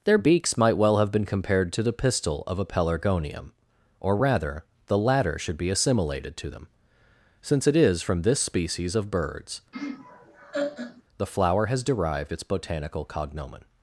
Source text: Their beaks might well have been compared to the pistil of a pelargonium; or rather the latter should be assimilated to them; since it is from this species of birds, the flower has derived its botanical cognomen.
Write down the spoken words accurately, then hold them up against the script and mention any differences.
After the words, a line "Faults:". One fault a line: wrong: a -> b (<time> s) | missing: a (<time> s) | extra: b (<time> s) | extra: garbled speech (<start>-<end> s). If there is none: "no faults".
Their beaks might well have been compared to the pistil of a pelargonium; or rather the latter should be assimilated to them; since it is from this species of birds, the flower has derived its botanical cognomen.
Faults:
no faults